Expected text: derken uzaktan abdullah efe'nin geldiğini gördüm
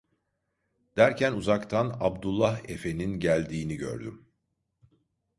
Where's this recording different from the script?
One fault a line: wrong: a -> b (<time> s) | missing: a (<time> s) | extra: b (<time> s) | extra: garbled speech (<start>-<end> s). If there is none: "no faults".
no faults